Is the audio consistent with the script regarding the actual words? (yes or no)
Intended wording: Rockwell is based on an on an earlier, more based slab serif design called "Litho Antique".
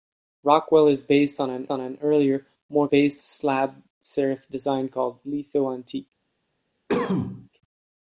yes